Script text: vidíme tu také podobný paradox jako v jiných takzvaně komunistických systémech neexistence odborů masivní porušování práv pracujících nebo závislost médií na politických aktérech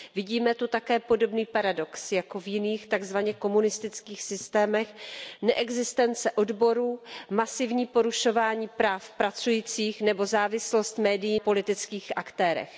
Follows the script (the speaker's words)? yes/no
no